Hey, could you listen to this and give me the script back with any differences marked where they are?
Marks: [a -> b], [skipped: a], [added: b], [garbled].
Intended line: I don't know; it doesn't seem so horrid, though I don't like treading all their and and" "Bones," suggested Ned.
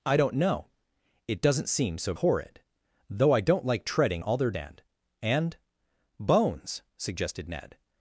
I don't know; it doesn't seem so horrid, though I don't like treading all their and and" "Bones," suggested Ned.